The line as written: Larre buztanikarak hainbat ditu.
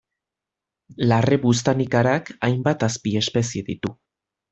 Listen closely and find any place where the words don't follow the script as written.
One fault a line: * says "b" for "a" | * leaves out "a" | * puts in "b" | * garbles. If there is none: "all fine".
* puts in "azpiespezie"